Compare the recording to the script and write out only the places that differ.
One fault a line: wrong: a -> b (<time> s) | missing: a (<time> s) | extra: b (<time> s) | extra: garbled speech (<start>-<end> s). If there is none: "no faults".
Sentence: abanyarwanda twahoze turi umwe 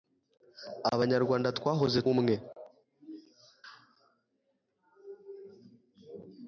missing: turi (2.0 s)